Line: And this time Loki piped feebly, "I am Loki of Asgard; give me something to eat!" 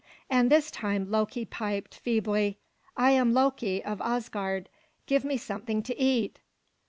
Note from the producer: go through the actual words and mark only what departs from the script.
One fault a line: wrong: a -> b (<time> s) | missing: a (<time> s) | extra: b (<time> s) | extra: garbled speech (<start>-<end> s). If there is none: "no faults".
no faults